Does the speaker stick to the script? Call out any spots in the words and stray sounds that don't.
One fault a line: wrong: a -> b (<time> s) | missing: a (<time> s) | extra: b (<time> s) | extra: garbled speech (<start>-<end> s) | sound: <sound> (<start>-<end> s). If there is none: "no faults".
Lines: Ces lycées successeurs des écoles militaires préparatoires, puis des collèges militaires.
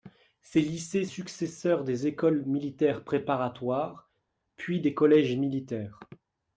no faults